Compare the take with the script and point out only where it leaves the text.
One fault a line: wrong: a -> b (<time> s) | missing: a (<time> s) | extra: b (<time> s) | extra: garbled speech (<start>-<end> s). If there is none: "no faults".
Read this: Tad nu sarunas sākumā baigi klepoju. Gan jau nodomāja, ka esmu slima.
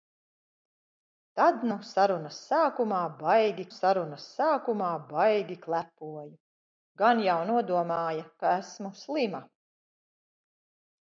extra: sarunas sākumā baigi (3.7 s)